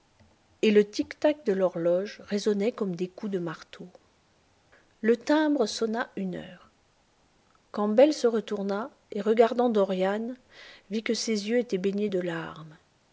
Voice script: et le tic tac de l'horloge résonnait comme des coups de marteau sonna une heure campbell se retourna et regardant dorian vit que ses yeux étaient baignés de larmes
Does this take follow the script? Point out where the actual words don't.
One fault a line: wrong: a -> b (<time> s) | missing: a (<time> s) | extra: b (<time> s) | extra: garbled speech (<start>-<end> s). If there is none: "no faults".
extra: le timbre (5.0 s)